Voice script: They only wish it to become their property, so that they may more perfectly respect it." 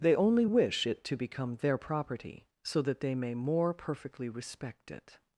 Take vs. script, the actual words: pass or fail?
pass